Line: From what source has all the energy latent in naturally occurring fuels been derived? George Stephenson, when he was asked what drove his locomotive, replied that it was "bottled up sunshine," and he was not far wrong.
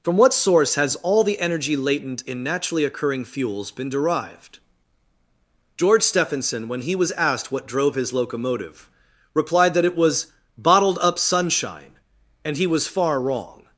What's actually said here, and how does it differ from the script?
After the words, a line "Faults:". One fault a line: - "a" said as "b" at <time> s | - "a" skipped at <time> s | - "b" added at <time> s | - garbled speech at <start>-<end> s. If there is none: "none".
From what source has all the energy latent in naturally occurring fuels been derived? George Stephenson, when he was asked what drove his locomotive, replied that it was "bottled up sunshine," and he was far wrong.
Faults:
- "not" skipped at 12.9 s